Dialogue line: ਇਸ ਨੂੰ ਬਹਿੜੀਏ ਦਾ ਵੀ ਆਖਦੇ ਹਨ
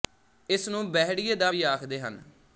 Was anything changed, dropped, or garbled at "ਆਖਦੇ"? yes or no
no